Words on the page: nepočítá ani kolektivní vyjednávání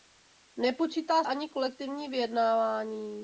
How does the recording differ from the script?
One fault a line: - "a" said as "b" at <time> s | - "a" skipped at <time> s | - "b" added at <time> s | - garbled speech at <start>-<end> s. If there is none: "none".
none